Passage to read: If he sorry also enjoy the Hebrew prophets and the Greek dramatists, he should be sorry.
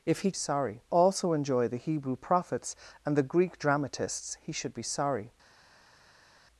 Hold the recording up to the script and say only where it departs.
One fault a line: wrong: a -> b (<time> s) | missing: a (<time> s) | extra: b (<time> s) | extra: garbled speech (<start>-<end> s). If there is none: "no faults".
no faults